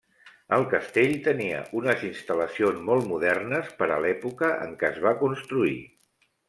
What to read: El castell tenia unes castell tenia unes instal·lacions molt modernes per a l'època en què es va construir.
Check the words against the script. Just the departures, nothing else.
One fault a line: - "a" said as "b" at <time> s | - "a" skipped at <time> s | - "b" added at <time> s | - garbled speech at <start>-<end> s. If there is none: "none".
- "castell tenia unes" skipped at 2.1 s